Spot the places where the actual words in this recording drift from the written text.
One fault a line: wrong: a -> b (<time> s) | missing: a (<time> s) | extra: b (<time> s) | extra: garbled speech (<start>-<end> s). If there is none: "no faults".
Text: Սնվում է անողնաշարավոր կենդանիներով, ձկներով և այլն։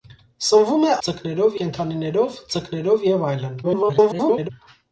wrong: անողնաշարավոր -> ձկներով (1.1 s)
extra: garbled speech (3.6-4.5 s)